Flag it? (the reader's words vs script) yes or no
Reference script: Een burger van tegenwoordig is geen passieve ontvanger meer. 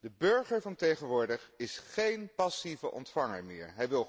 yes